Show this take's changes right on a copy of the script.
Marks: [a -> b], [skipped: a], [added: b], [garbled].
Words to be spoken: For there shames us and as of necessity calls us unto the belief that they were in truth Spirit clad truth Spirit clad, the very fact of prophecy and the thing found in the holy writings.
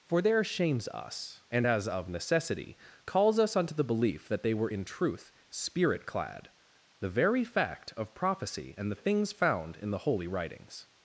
For there shames us and as of necessity calls us unto the belief that they were in truth Spirit clad [skipped: truth Spirit clad,] the very fact of prophecy and the [thing -> things] found in the holy writings.